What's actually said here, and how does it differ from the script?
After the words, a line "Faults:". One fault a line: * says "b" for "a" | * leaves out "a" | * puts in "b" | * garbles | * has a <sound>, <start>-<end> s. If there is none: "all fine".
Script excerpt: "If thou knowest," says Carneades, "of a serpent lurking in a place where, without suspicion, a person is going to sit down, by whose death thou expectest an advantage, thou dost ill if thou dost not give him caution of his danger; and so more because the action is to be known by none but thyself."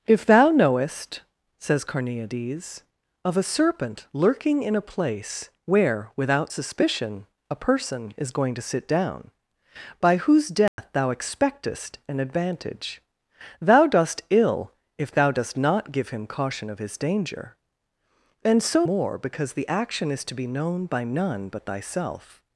"If thou knowest," says Carneades, "of a serpent lurking in a place where, without suspicion, a person is going to sit down, by whose death thou expectest an advantage, thou dost ill if thou dost not give him caution of his danger; and so more because the action is to be known by none but thyself."
Faults:
* has a dropout, 10.7-10.8 s